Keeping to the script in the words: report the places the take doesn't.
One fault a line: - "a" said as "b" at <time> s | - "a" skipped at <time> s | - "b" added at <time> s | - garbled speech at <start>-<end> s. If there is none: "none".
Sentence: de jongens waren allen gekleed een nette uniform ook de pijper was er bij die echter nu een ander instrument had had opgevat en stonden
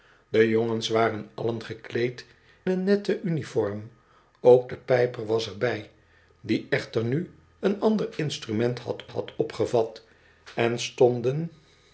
none